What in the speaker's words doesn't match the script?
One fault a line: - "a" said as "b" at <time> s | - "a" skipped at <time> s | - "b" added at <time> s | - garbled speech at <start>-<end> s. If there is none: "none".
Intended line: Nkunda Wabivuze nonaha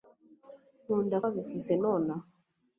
none